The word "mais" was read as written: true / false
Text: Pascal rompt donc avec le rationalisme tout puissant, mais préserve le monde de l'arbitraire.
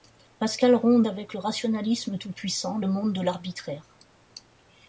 false